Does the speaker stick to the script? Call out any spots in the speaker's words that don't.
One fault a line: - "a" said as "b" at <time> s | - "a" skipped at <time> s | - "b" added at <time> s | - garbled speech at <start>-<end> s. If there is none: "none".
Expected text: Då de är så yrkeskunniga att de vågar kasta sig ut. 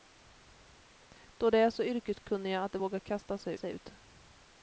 - "sig" added at 3.5 s